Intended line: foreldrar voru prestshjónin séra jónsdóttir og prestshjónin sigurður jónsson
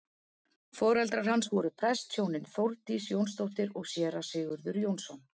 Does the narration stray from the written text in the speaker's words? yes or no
yes